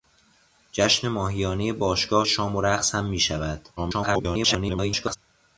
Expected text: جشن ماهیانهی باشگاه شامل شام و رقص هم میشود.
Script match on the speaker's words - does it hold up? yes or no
no